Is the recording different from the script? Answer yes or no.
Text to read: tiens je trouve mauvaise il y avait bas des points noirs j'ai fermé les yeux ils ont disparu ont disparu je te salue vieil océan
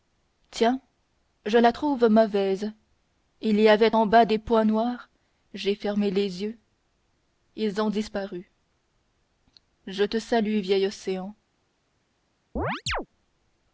yes